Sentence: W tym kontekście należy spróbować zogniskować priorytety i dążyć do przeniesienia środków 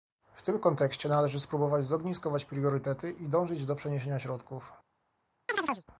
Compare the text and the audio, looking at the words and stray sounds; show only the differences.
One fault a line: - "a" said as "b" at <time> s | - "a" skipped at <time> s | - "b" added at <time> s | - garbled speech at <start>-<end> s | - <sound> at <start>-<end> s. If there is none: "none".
- chirp at 5.5-5.8 s